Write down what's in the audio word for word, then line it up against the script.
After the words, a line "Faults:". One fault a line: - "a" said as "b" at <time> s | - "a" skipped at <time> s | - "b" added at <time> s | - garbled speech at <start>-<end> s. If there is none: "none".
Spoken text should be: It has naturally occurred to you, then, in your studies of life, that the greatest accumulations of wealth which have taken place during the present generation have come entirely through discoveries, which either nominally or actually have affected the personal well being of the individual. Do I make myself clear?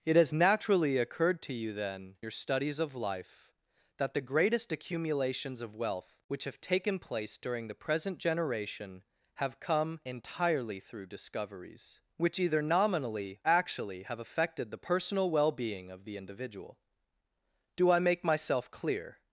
It has naturally occurred to you, then, your studies of life, that the greatest accumulations of wealth which have taken place during the present generation have come entirely through discoveries, which either nominally actually have affected the personal well being of the individual. Do I make myself clear?
Faults:
- "in" skipped at 2.1 s
- "or" skipped at 13.4 s